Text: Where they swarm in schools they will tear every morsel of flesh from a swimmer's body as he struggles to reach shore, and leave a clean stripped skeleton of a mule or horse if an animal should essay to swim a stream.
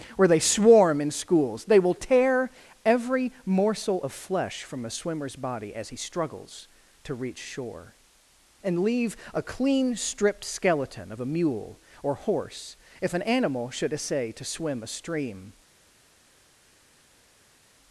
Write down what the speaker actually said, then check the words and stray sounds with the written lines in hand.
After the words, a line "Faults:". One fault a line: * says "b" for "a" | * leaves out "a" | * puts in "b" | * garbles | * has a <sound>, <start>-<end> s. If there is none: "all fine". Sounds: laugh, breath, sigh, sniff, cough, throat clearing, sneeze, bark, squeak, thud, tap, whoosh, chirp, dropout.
Where they swarm in schools they will tear every morsel of flesh from a swimmer's body as he struggles to reach shore, and leave a clean stripped skeleton of a mule or horse if an animal should essay to swim a stream.
Faults:
all fine